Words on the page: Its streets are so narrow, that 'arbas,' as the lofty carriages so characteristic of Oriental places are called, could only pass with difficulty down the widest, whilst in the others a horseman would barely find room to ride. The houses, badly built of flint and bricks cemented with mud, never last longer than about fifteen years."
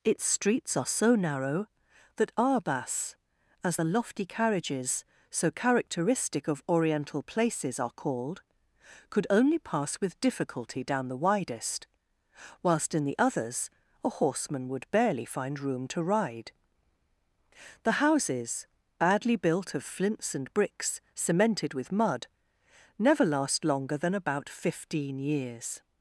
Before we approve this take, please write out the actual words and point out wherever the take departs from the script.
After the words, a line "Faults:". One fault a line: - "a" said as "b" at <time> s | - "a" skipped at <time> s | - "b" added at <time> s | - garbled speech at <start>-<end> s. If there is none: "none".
Its streets are so narrow, that 'arbas,' as the lofty carriages so characteristic of Oriental places are called, could only pass with difficulty down the widest, whilst in the others a horseman would barely find room to ride. The houses, badly built of flints and bricks cemented with mud, never last longer than about fifteen years."
Faults:
- "flint" said as "flints" at 19.8 s